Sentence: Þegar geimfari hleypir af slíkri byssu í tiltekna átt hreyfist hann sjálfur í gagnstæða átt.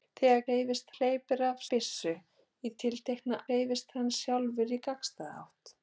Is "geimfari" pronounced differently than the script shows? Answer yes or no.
yes